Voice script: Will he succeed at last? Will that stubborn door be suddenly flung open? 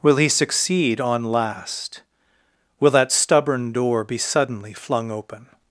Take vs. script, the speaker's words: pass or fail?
fail